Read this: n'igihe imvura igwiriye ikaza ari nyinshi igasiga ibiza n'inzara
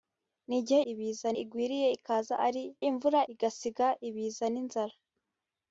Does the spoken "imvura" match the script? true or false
false